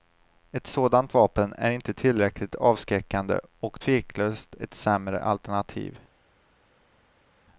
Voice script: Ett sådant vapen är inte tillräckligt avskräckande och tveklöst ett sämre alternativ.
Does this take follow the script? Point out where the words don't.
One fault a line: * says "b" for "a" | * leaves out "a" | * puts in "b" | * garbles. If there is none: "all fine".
all fine